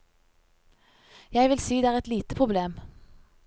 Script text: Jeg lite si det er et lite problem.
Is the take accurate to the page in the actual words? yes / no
no